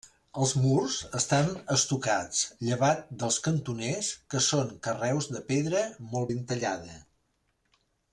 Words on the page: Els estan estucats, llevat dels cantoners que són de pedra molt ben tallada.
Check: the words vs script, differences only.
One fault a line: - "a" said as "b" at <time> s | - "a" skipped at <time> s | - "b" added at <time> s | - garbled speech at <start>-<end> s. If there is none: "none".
- "murs" added at 0.6 s
- "carreus" added at 4.9 s